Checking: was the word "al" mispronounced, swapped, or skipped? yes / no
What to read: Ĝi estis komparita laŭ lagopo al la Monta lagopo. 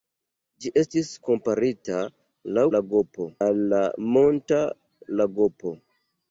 no